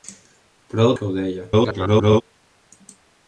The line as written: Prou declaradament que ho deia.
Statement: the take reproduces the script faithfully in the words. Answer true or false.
false